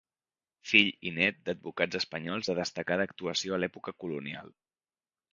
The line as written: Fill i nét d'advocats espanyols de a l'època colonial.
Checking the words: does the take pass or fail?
fail